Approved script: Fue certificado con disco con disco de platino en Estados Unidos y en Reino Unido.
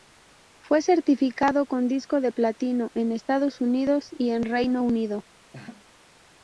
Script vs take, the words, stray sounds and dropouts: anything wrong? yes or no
yes